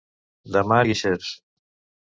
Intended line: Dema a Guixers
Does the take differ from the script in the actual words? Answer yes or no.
no